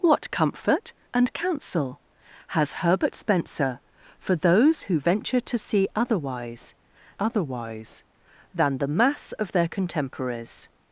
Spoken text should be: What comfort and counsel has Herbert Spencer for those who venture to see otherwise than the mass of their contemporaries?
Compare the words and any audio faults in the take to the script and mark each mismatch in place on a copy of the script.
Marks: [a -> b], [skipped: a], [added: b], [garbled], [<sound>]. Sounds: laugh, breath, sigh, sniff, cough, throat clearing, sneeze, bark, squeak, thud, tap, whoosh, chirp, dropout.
What comfort and counsel has Herbert Spencer for those who venture to see otherwise [added: otherwise] than the mass of their contemporaries?